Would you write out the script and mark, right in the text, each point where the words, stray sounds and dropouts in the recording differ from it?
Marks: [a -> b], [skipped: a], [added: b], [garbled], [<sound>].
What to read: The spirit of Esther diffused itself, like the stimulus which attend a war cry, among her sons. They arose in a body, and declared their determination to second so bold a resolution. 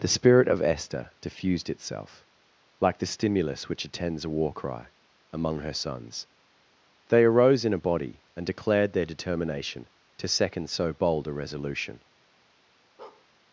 The spirit of Esther diffused itself, like the stimulus which [attend -> attends] a war cry, among her sons. They arose in a body, and declared their determination to second so bold a resolution. [bark]